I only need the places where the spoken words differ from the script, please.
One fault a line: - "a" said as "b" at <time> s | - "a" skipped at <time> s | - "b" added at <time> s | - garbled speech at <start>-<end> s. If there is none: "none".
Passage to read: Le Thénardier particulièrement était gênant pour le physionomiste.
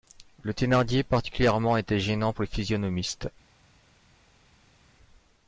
none